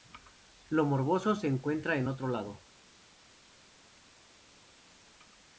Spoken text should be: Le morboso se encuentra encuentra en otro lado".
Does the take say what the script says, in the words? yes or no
no